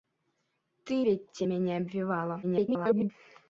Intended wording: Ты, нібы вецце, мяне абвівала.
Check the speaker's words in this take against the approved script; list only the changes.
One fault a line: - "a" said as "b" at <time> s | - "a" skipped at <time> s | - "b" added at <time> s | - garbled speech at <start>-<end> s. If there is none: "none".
- "нібы" skipped at 1.0 s
- garbled speech at 2.4-3.1 s